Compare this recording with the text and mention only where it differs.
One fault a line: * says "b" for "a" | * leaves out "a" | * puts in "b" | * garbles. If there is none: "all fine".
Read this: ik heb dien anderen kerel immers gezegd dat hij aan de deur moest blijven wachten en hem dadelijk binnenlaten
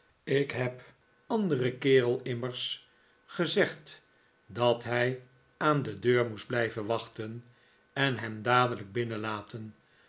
* leaves out "dien"